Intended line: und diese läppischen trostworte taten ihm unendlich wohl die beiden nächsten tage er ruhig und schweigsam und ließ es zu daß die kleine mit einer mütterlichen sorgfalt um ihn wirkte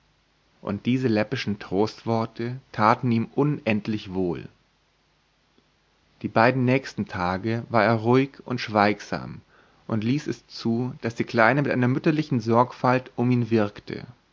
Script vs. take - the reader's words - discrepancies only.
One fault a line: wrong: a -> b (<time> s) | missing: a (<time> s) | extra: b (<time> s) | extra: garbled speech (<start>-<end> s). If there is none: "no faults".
extra: war (7.7 s)